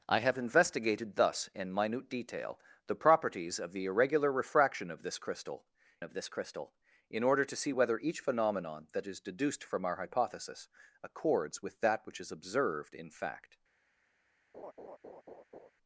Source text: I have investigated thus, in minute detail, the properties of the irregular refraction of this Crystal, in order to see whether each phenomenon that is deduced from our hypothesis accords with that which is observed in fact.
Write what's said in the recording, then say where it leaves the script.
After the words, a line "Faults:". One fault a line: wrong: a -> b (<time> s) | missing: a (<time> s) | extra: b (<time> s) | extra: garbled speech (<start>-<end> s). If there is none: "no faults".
I have investigated thus, in minute detail, the properties of the irregular refraction of this Crystal of this Crystal, in order to see whether each phenomenon that is deduced from our hypothesis accords with that which is observed in fact.
Faults:
extra: of this Crystal (6.0 s)